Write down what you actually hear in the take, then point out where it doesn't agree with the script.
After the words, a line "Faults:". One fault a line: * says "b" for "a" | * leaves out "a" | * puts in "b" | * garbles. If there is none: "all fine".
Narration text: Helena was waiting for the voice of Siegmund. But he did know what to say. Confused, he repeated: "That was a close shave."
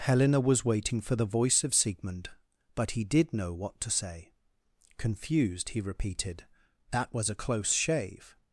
Helena was waiting for the voice of Siegmund. But he did know what to say. Confused, he repeated: "That was a close shave."
Faults:
all fine